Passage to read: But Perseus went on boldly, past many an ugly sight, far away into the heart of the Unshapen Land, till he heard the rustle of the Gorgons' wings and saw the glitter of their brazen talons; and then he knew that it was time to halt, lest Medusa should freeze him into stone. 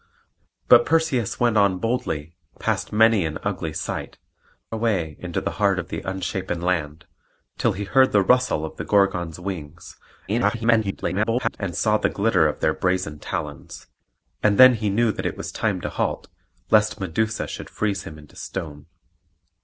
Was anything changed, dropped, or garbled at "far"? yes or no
yes